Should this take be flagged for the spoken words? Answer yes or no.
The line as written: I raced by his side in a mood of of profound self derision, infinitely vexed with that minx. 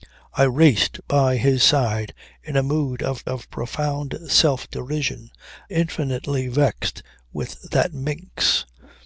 no